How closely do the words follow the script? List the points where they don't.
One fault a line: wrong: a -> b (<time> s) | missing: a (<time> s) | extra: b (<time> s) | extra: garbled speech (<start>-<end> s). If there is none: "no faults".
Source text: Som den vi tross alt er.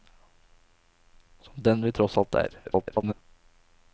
extra: garbled speech (2.6-3.1 s)